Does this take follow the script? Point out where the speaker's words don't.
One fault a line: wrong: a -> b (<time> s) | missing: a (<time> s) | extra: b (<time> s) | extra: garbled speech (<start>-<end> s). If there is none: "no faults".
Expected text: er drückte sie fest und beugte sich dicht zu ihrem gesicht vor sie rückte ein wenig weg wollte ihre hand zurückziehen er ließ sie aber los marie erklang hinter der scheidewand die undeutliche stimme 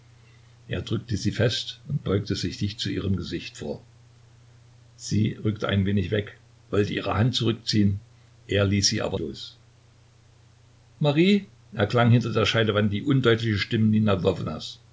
no faults